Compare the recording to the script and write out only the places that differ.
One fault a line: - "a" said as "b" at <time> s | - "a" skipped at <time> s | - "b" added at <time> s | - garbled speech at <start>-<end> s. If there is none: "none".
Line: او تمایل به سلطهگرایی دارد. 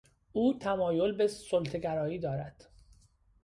none